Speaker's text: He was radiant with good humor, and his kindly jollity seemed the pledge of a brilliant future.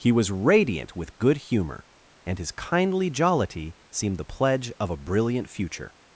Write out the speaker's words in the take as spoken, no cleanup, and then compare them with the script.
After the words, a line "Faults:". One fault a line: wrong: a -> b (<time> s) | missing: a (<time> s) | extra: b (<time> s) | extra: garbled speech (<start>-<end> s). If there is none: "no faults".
He was radiant with good humor, and his kindly jollity seemed the pledge of a brilliant future.
Faults:
no faults